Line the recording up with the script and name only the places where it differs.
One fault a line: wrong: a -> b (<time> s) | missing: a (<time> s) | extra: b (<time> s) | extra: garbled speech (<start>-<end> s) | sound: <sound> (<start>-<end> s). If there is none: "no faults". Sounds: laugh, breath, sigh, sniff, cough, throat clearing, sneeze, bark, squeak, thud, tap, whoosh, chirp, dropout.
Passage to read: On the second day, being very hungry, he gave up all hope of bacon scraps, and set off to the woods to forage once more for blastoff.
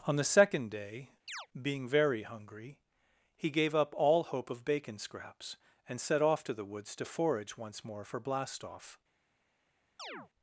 sound: chirp (1.3-1.5 s)
sound: chirp (10.0-10.3 s)